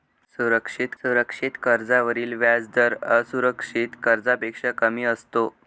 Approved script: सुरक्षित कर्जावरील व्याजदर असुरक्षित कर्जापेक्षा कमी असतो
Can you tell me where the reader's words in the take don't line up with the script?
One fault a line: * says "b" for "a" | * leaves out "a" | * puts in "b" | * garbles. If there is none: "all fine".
* puts in "सुरक्षित"